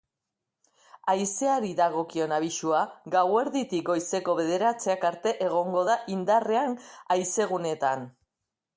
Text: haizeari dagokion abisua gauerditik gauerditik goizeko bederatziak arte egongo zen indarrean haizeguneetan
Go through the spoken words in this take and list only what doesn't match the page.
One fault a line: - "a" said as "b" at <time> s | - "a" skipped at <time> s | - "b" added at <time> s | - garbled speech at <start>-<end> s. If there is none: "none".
- "gauerditik" skipped at 3.9 s
- "zen" said as "da" at 5.9 s